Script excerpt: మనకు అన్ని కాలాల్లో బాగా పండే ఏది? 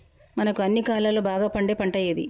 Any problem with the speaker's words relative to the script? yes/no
yes